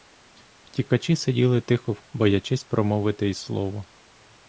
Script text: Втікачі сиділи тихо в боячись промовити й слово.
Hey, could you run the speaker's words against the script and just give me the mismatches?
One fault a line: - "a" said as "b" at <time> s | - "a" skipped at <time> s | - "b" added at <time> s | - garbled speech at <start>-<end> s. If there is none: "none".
none